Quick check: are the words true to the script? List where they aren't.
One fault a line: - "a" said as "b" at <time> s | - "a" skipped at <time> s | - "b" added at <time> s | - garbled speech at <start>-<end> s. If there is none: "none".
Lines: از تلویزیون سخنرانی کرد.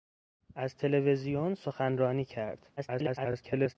- garbled speech at 2.8-3.8 s